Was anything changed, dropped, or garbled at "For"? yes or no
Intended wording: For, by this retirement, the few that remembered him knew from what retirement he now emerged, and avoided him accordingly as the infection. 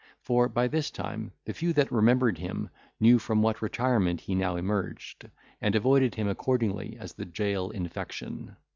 no